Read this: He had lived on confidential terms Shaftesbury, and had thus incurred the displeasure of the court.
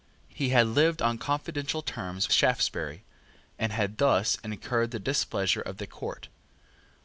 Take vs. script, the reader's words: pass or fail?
pass